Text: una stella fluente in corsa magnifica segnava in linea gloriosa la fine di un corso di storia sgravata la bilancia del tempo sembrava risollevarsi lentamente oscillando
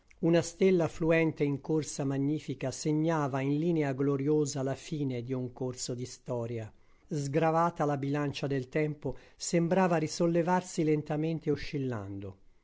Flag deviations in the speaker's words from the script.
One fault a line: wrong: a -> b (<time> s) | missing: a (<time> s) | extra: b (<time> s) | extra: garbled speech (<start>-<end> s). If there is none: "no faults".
no faults